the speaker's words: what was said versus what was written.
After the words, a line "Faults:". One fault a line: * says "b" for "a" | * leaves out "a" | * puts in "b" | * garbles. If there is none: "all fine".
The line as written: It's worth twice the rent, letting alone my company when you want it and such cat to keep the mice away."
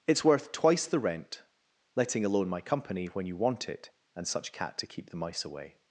It's worth twice the rent, letting alone my company when you want it and such cat to keep the mice away."
Faults:
all fine